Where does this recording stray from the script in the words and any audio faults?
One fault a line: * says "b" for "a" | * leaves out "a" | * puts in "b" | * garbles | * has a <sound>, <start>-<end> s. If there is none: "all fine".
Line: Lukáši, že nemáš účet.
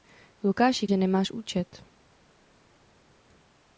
all fine